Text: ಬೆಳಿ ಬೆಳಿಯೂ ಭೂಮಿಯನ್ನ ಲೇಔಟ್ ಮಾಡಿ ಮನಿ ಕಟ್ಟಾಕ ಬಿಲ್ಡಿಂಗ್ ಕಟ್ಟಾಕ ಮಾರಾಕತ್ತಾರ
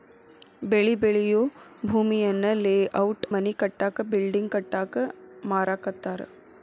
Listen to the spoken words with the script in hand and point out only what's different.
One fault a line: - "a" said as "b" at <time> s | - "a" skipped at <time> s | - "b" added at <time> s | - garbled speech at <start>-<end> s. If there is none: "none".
- "ಮಾಡಿ" skipped at 3.3 s